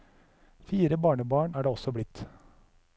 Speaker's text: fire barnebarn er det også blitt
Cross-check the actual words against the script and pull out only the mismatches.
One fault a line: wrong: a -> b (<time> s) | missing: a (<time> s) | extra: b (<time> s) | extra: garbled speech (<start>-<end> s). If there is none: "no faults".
no faults